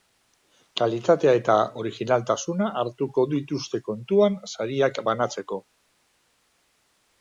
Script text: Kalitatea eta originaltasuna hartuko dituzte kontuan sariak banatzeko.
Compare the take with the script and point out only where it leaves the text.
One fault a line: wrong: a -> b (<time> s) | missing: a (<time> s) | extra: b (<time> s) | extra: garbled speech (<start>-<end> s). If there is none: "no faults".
no faults